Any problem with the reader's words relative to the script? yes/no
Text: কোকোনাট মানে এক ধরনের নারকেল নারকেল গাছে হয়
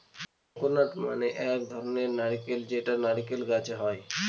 yes